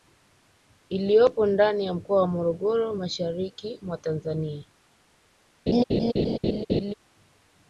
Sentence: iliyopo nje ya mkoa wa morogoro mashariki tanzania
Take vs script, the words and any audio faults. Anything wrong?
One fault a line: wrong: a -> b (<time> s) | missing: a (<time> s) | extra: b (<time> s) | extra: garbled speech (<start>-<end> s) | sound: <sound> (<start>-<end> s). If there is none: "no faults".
wrong: nje -> ndani (1.4 s)
extra: mwa (3.8 s)
sound: laugh (5.7-6.9 s)